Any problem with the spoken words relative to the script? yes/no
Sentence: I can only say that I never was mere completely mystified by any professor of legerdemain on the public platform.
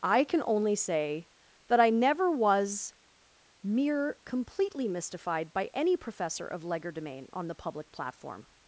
no